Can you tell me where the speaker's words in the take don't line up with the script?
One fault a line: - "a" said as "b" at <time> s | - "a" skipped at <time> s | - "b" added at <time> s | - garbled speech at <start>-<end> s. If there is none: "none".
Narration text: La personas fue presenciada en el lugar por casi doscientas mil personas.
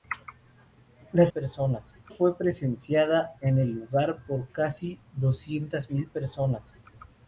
none